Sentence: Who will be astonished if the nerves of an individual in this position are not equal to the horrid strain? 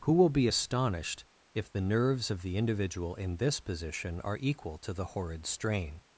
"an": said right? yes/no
no